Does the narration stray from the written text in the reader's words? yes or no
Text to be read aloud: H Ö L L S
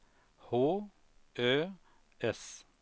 yes